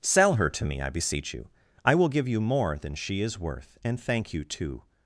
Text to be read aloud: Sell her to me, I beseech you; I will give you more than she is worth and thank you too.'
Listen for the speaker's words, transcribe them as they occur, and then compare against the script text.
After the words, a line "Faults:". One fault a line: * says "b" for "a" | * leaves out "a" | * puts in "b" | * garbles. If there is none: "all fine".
Sell her to me, I beseech you; I will give you more than she is worth and thank you too.'
Faults:
all fine